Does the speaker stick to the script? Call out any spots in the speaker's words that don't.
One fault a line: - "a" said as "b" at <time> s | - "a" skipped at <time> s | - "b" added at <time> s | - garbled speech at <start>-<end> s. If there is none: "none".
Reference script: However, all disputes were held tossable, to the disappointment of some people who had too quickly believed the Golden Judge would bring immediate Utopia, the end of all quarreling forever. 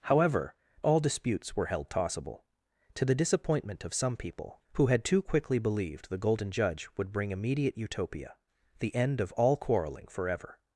none